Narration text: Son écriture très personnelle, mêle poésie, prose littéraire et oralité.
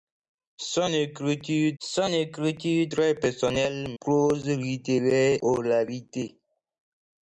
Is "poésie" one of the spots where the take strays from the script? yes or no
yes